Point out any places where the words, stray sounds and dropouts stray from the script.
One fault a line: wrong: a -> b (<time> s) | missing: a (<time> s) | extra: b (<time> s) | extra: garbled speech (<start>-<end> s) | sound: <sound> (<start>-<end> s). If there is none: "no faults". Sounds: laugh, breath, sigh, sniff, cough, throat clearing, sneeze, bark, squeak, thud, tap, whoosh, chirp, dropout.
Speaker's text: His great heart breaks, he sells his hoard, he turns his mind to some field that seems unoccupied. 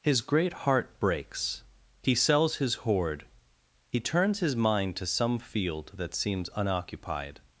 no faults